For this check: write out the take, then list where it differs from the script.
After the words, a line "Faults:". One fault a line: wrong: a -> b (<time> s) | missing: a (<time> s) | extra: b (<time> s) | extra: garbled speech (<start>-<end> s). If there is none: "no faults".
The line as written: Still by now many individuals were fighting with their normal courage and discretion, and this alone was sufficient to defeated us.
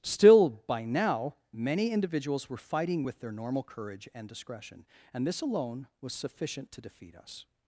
Still by now many individuals were fighting with their normal courage and discretion, and this alone was sufficient to defeat us.
Faults:
wrong: defeated -> defeat (6.8 s)